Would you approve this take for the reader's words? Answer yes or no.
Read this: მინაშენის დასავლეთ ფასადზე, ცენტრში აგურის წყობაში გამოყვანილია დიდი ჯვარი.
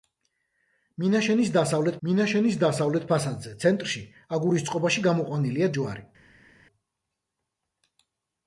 no